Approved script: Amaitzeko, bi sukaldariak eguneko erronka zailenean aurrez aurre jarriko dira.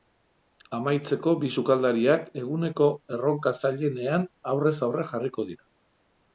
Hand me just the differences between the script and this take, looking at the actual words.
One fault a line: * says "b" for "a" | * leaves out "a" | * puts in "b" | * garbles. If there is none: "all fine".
all fine